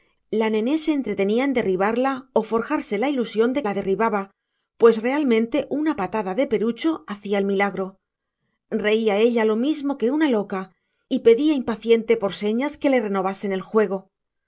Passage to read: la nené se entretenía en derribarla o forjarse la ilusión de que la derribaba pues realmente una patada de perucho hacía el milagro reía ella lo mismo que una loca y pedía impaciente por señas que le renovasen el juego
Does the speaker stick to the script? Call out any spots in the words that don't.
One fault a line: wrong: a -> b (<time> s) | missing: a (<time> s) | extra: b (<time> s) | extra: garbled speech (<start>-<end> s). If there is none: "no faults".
missing: que (3.6 s)